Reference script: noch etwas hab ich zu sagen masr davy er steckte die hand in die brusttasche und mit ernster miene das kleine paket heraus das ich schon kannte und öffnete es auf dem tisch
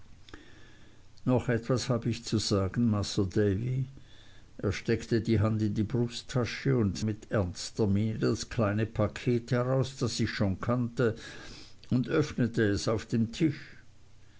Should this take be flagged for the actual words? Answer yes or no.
no